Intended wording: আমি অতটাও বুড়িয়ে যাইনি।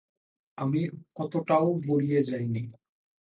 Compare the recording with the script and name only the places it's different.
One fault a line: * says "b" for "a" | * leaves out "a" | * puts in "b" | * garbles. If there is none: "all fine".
all fine